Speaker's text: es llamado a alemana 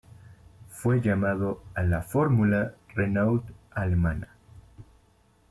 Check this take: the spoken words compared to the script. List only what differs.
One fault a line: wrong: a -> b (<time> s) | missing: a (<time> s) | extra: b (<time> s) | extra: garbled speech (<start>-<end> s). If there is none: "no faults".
wrong: es -> fue (0.7 s)
extra: la fórmula renault (1.8 s)